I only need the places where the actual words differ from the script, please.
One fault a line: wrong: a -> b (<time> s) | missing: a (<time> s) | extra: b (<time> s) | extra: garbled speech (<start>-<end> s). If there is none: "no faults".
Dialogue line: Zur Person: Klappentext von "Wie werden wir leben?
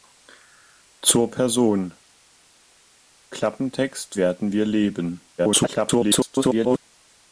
missing: von Wie (4.2 s)
extra: garbled speech (5.4-6.8 s)